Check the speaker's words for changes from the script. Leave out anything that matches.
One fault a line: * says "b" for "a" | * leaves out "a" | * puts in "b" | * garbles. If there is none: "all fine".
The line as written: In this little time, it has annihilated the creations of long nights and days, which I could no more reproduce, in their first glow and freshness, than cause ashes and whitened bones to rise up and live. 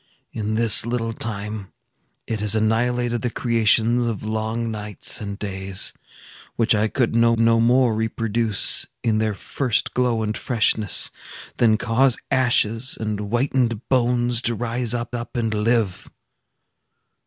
* puts in "no"
* puts in "up"